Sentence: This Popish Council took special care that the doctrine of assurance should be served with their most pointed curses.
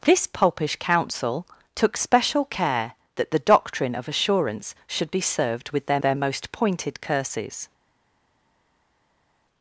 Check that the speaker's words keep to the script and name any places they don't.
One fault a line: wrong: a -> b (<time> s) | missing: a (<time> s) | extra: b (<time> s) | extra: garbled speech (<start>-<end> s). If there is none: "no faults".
extra: their (6.0 s)